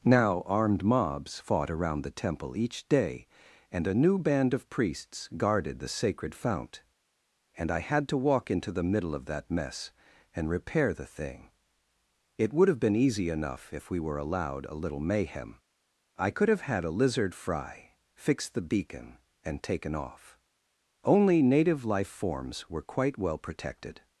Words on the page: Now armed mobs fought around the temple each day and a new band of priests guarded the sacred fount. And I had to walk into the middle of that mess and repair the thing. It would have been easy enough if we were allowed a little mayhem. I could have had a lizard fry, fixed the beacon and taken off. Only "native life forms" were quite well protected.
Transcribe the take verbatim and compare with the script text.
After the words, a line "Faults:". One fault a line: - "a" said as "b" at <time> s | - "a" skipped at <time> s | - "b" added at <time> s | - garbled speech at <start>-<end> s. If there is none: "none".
Now armed mobs fought around the temple each day and a new band of priests guarded the sacred fount. And I had to walk into the middle of that mess and repair the thing. It would have been easy enough if we were allowed a little mayhem. I could have had a lizard fry, fixed the beacon and taken off. Only "native life forms" were quite well protected.
Faults:
none